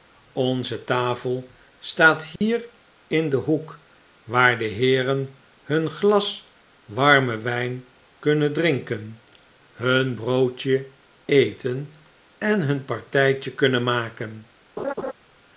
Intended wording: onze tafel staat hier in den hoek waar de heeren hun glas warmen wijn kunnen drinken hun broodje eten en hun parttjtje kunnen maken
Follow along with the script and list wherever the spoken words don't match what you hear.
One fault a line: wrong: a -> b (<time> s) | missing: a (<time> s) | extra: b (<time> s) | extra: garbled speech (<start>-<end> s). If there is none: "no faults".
no faults